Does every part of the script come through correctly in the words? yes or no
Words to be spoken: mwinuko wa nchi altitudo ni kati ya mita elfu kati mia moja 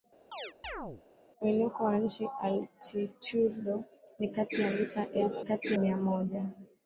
yes